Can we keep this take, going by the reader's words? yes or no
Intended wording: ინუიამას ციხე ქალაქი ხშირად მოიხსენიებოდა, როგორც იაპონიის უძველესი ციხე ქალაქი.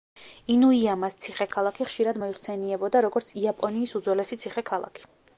yes